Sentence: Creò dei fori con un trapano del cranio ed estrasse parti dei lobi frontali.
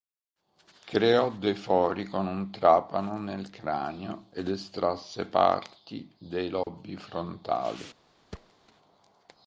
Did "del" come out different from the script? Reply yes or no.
yes